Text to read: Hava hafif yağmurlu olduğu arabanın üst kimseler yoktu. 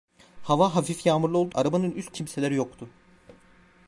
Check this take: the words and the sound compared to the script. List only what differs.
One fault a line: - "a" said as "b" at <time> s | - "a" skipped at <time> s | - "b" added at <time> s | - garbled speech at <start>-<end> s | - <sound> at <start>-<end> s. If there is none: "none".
none